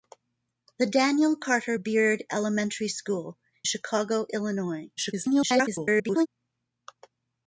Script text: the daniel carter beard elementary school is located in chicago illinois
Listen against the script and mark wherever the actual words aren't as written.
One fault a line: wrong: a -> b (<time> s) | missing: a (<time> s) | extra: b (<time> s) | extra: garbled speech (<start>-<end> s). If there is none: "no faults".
missing: is located in (3.4 s)
extra: garbled speech (5.0-6.3 s)